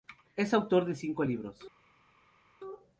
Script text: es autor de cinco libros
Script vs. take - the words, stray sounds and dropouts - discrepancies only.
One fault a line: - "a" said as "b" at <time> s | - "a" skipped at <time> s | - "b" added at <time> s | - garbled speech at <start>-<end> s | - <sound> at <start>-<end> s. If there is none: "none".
none